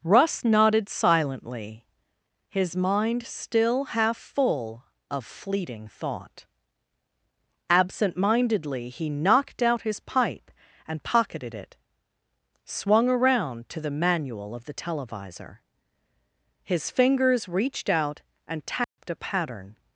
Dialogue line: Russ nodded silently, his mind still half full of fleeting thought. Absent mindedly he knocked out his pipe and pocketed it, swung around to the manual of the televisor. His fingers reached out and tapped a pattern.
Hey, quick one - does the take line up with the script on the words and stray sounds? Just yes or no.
no